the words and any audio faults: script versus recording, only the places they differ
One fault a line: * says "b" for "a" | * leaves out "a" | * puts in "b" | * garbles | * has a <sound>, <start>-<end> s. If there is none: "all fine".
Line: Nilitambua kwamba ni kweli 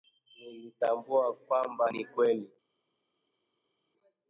all fine